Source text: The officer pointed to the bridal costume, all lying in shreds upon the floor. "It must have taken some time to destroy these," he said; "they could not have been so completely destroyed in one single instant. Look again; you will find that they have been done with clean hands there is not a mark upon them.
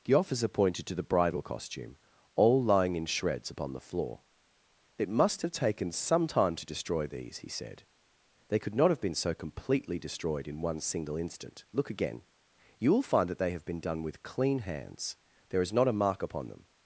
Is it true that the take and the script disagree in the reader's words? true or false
false